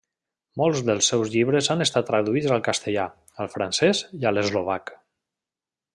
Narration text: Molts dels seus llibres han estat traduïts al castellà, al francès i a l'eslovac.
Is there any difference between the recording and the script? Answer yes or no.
no